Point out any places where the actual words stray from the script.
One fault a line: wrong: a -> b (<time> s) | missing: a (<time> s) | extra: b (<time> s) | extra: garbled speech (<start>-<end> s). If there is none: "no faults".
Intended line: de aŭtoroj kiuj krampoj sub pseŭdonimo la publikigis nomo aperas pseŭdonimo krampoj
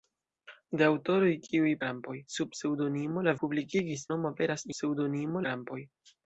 no faults